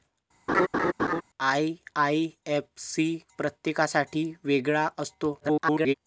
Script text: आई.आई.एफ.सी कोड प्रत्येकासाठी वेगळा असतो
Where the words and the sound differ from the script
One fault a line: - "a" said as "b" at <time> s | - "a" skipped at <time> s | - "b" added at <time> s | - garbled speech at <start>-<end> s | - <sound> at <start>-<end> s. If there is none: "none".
- laugh at 0.5-1.2 s
- "कोड" skipped at 3.1 s
- garbled speech at 5.4-5.9 s